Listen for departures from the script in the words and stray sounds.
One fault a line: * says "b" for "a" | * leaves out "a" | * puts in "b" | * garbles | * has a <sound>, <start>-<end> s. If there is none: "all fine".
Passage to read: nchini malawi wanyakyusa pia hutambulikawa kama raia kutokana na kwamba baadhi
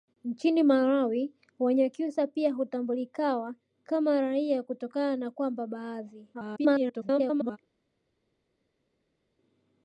* garbles